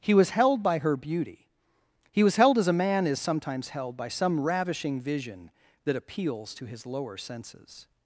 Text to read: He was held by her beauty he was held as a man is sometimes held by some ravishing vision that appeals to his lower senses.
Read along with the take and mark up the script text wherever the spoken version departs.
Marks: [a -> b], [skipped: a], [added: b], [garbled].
He was held by her beauty he was held as a man is sometimes held by some ravishing vision that appeals to his lower senses.